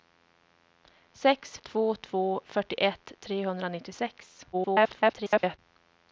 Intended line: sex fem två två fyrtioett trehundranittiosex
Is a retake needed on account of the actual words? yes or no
yes